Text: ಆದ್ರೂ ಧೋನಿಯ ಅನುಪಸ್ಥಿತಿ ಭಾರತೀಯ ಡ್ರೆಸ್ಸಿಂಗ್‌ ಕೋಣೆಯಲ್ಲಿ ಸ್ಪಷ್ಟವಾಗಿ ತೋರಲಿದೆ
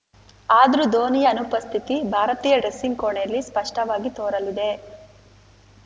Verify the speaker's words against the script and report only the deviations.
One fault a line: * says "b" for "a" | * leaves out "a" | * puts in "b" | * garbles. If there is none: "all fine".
all fine